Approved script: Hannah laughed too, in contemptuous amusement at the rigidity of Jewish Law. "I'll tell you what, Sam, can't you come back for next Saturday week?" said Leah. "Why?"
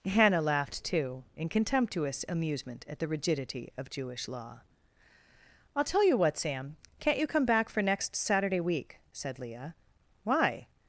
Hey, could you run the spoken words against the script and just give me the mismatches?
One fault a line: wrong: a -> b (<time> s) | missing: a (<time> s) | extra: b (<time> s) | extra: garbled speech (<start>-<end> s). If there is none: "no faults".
no faults